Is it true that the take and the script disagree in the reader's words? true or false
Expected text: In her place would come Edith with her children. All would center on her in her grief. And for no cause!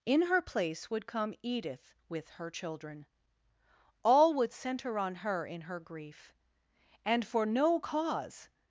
false